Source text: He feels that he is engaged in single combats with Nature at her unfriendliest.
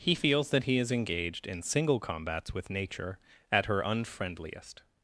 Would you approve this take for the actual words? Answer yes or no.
yes